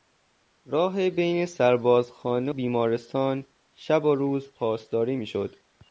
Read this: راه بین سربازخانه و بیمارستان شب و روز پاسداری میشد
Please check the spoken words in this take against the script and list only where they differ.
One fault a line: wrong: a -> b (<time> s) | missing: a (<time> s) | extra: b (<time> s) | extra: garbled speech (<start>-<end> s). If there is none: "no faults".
missing: و (2.5 s)